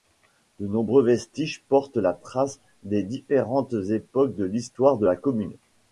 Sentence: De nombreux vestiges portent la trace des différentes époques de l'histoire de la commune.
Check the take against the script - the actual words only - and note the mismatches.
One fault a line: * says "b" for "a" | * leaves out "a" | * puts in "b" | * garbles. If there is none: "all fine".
all fine